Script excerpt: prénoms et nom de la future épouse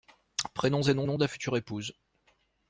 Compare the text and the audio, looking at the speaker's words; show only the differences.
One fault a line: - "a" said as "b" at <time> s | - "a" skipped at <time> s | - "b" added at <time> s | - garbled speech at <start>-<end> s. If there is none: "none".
- "nom" added at 1.1 s